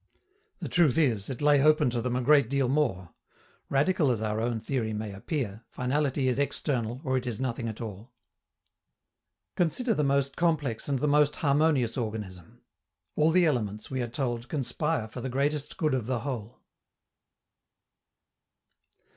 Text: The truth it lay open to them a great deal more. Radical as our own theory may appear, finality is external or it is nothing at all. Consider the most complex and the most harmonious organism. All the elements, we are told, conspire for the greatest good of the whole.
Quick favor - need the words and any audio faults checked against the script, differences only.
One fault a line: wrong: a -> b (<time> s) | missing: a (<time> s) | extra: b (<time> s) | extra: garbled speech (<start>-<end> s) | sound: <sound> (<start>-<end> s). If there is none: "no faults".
extra: is (1.0 s)